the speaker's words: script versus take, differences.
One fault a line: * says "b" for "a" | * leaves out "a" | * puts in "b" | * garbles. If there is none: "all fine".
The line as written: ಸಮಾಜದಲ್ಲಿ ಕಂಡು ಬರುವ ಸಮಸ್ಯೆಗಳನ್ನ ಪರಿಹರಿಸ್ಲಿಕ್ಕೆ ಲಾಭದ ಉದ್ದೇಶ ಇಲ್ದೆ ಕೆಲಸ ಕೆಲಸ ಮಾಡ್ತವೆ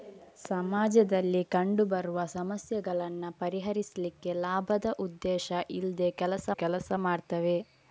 all fine